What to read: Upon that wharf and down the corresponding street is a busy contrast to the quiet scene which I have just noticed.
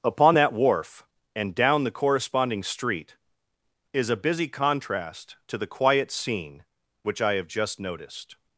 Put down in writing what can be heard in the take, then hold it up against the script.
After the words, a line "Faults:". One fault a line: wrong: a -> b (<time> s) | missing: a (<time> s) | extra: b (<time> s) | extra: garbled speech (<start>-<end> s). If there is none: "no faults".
Upon that wharf and down the corresponding street is a busy contrast to the quiet scene which I have just noticed.
Faults:
no faults